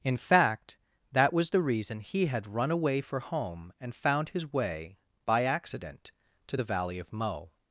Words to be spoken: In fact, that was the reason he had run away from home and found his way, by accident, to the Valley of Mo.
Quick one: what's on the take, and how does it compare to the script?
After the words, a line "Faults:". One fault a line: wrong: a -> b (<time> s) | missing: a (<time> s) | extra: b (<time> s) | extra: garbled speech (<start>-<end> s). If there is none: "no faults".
In fact, that was the reason he had run away for home and found his way, by accident, to the Valley of Mo.
Faults:
wrong: from -> for (3.0 s)